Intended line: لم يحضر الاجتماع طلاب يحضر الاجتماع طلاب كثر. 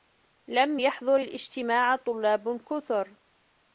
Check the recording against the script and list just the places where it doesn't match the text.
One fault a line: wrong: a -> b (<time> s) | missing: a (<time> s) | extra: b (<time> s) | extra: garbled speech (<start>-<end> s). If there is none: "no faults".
missing: يحضر الاجتماع طلاب (2.6 s)